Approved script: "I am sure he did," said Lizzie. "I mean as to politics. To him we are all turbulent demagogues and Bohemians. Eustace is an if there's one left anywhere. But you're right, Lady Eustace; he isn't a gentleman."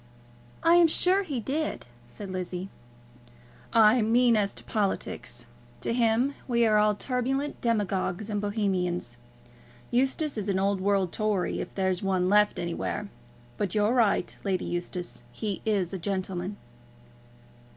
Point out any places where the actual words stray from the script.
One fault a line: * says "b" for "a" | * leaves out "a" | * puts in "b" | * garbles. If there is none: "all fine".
* puts in "old world Tory"
* says "is" for "isn't"